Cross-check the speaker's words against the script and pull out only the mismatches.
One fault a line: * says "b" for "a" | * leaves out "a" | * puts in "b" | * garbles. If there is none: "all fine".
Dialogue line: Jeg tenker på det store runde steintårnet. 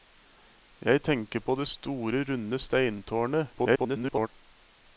* garbles